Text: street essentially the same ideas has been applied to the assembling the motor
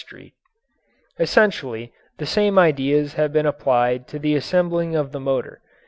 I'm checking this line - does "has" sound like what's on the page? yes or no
no